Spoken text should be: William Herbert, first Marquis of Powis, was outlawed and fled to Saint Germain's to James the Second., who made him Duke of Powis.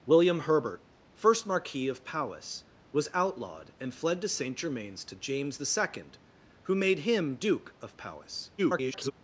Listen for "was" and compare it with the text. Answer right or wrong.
right